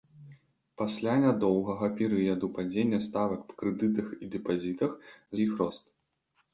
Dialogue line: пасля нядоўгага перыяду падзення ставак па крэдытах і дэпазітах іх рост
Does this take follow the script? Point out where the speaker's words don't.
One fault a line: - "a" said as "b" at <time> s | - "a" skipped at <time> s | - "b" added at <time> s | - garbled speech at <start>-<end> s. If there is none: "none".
none